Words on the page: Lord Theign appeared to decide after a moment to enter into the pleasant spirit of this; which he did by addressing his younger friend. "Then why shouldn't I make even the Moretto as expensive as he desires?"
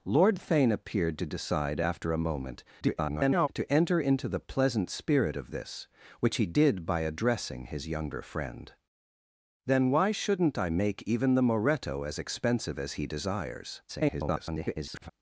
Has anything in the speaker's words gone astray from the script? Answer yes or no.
yes